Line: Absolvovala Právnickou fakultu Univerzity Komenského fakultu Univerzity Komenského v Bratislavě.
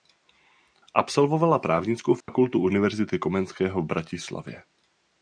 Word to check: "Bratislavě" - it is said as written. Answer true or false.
true